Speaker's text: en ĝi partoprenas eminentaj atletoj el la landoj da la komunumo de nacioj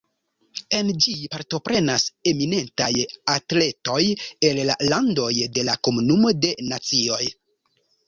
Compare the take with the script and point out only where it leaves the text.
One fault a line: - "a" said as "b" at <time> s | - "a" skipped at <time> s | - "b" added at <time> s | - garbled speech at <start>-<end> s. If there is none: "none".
- "da" said as "de" at 5.6 s